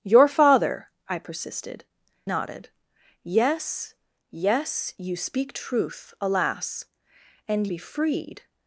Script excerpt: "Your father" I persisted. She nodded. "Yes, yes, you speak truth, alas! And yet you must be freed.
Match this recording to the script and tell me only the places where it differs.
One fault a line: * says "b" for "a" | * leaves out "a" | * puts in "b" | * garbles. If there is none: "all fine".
* leaves out "She"
* leaves out "yet you must"